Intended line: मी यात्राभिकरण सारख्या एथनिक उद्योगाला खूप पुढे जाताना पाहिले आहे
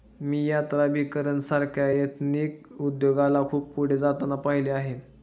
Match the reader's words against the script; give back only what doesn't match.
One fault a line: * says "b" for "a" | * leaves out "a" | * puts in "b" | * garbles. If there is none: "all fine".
all fine